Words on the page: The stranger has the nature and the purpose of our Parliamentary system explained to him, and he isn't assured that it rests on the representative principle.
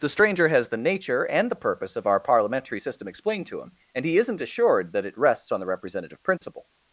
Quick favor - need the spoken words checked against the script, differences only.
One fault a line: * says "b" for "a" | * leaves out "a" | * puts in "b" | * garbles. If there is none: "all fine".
all fine